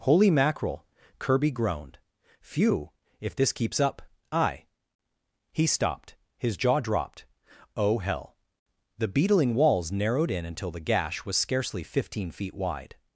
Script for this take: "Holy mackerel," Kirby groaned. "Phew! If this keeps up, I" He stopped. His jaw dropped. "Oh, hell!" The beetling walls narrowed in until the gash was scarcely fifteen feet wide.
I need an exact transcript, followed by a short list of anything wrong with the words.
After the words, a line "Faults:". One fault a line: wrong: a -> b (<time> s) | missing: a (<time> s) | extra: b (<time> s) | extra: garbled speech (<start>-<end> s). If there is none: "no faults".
"Holy mackerel," Kirby groaned. "Phew! If this keeps up, I" He stopped. His jaw dropped. "Oh, hell!" The beetling walls narrowed in until the gash was scarcely fifteen feet wide.
Faults:
no faults